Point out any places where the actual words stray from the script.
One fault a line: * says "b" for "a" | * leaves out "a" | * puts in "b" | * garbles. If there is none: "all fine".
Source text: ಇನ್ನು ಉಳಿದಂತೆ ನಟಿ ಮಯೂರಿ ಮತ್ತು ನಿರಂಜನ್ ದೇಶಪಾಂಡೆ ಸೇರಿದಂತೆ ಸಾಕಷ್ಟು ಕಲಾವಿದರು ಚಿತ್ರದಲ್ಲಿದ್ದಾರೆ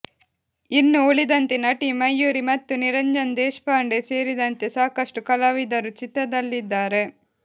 all fine